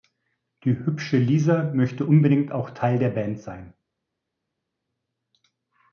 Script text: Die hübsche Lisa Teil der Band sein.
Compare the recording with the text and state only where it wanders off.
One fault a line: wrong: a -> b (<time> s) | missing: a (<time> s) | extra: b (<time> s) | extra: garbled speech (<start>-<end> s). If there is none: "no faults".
extra: möchte unbedingt auch (1.8 s)